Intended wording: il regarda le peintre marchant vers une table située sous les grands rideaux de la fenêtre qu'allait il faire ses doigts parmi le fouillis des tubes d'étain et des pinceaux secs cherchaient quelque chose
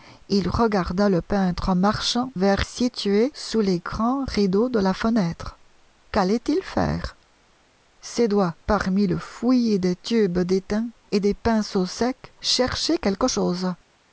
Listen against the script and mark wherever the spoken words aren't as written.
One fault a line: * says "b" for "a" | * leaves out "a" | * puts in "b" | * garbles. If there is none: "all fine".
* leaves out "une table"